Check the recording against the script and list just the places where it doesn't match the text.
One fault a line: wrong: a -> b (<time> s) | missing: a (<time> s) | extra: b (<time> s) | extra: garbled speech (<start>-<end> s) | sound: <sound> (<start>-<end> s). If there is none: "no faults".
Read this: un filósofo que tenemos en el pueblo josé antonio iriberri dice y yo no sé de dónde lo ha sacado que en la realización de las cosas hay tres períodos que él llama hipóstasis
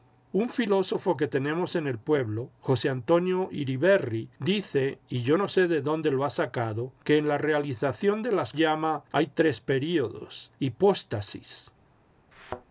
wrong: cosas -> llama (8.6 s)
missing: que él llama (10.5 s)
sound: thud (12.3-12.6 s)